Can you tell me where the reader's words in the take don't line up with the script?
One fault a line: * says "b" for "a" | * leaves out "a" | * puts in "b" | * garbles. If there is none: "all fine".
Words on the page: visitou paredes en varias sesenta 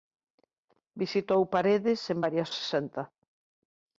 all fine